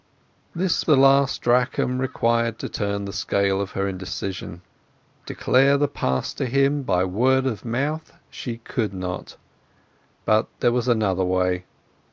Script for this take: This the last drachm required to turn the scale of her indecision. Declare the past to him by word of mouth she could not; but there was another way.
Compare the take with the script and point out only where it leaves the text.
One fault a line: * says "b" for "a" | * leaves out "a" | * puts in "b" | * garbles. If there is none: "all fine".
all fine